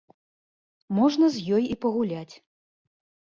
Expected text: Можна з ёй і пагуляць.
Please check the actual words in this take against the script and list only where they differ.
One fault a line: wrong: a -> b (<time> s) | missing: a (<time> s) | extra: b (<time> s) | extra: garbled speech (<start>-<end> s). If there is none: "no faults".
no faults